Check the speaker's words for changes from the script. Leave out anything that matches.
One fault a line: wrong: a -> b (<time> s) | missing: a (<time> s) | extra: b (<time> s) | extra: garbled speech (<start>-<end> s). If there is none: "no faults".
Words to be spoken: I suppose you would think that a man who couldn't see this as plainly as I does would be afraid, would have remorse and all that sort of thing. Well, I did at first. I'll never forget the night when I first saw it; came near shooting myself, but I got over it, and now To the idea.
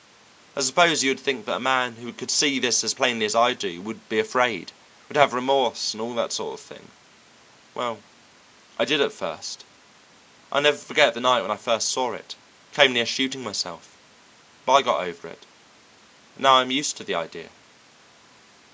wrong: couldn't -> could (2.1 s)
wrong: does -> do (3.5 s)
extra: I'm used (16.5 s)